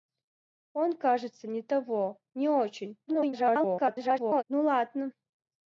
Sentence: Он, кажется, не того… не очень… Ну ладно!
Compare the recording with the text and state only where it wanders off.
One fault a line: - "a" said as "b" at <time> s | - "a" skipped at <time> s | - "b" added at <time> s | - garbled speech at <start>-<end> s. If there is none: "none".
- garbled speech at 3.1-4.4 s